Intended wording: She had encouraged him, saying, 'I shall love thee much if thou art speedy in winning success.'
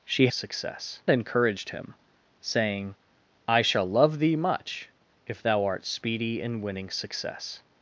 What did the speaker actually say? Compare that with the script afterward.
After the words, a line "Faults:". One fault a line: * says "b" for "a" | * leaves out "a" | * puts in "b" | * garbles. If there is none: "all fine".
She success encouraged him, saying, 'I shall love thee much if thou art speedy in winning success.'
Faults:
* says "success" for "had"